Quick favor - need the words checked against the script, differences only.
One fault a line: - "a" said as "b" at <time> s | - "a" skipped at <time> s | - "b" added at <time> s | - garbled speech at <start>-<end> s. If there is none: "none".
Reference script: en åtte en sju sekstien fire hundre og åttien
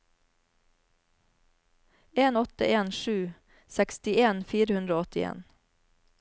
none